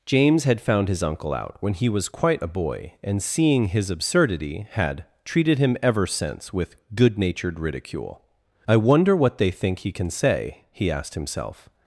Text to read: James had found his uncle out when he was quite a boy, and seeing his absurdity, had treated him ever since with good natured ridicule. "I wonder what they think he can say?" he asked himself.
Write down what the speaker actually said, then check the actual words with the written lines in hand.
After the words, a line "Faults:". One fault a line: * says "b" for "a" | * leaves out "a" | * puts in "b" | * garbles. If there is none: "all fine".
James had found his uncle out when he was quite a boy, and seeing his absurdity, had treated him ever since with good natured ridicule. "I wonder what they think he can say?" he asked himself.
Faults:
all fine